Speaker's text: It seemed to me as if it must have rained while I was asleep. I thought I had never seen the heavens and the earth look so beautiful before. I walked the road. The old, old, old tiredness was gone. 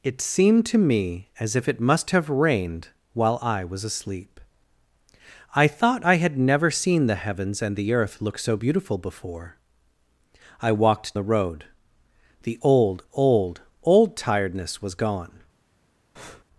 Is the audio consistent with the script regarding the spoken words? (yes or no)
yes